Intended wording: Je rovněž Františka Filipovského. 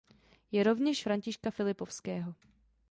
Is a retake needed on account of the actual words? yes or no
no